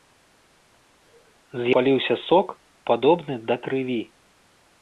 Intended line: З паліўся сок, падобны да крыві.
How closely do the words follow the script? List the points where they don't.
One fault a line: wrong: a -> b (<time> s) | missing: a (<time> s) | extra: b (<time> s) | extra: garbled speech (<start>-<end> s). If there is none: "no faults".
no faults